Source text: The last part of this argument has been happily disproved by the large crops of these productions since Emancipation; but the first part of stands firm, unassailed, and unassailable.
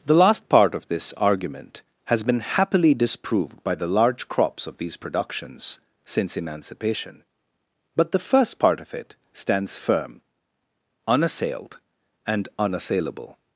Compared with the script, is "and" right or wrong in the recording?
right